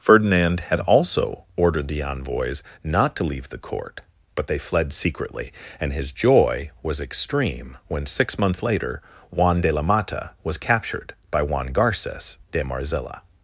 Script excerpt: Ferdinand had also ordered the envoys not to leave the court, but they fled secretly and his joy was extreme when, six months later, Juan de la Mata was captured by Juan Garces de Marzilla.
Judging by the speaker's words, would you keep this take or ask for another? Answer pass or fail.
pass